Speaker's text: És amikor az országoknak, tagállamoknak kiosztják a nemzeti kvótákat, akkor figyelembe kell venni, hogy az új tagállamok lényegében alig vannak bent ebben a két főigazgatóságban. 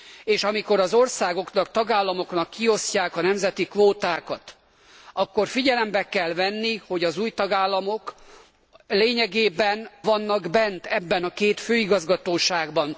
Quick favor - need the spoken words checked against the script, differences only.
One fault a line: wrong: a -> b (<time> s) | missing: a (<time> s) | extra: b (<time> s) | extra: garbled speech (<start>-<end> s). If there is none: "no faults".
missing: alig (9.9 s)